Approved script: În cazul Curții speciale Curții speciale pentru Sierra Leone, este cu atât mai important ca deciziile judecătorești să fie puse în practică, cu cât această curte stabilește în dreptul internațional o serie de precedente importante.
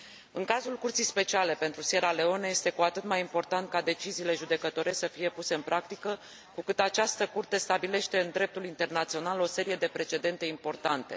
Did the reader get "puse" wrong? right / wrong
right